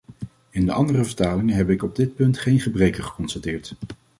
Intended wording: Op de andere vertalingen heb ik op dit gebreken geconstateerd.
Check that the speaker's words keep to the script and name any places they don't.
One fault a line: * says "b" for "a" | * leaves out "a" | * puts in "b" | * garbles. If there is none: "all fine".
* says "In" for "Op"
* puts in "punt geen"